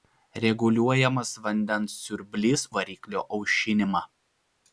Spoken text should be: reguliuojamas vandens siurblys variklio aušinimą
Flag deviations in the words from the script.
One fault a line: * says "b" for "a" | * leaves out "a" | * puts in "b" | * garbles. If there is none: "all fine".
all fine